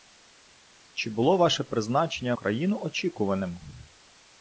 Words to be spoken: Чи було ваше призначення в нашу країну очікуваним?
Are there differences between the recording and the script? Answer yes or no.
yes